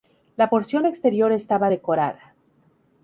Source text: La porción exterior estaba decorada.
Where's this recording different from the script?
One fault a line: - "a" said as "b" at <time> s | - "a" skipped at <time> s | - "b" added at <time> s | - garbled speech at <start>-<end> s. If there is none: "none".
none